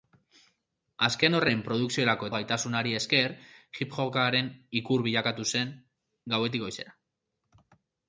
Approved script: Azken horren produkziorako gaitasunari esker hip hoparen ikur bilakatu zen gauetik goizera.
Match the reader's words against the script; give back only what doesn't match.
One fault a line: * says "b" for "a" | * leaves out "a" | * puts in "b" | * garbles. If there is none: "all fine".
all fine